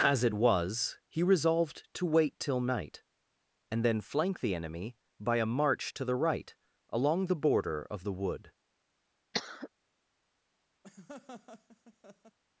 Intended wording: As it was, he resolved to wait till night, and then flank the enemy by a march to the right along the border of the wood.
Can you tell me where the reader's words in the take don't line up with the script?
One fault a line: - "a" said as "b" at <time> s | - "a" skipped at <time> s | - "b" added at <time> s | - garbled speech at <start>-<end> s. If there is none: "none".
none